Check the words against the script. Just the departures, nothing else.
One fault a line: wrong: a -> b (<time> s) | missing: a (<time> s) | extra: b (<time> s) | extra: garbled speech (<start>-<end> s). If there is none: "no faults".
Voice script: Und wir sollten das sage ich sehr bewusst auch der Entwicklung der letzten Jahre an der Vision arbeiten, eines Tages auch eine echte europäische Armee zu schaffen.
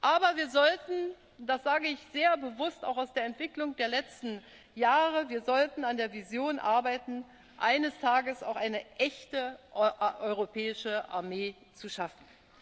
wrong: Und -> Aber (0.0 s)
extra: aus (3.0 s)